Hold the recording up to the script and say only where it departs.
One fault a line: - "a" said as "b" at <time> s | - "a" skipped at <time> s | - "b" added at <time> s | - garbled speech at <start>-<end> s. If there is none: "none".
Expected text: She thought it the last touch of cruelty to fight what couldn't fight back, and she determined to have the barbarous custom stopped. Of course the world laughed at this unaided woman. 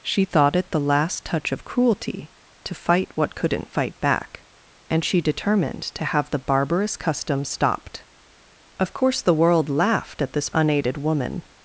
none